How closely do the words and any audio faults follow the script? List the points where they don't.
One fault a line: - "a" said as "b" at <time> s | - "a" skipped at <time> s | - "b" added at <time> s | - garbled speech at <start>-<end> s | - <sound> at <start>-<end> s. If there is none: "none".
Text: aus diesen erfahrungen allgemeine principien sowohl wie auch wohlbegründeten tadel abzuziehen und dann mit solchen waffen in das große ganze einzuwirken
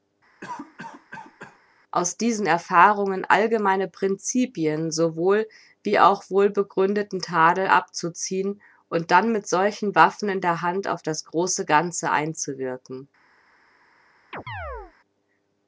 - cough at 0.4-1.6 s
- "der hand auf" added at 10.4 s
- chirp at 14.3-14.9 s